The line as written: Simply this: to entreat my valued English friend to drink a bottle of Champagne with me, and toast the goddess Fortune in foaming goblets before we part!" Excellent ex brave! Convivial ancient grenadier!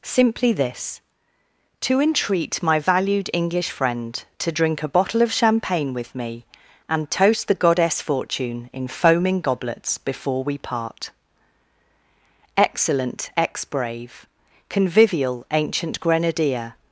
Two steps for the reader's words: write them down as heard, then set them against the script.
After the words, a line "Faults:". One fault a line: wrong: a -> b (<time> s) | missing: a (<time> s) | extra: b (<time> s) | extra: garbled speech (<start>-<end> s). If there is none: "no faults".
Simply this: to entreat my valued English friend to drink a bottle of Champagne with me, and toast the goddess Fortune in foaming goblets before we part!" Excellent ex brave! Convivial ancient grenadier!
Faults:
no faults